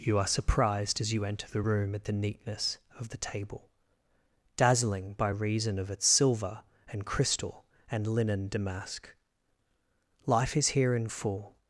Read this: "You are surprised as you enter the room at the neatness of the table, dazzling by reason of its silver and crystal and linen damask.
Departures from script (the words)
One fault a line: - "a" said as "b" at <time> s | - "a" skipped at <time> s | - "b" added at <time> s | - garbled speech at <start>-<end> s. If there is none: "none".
- "Life is here in full" added at 10.3 s